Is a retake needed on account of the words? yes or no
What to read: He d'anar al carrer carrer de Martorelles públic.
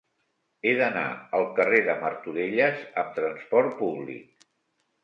yes